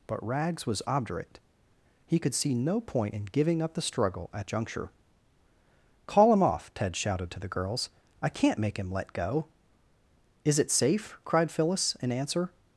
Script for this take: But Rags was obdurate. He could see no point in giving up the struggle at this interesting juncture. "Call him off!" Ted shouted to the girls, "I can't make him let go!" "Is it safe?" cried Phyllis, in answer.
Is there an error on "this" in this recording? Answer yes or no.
yes